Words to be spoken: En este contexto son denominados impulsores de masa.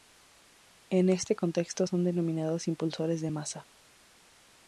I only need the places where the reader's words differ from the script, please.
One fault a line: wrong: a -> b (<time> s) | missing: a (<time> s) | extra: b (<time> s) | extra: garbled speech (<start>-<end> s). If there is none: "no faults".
no faults